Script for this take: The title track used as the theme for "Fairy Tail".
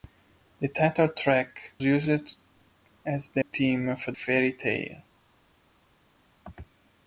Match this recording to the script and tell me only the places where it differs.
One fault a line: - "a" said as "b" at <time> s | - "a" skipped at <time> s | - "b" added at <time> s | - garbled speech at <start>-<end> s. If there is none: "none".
none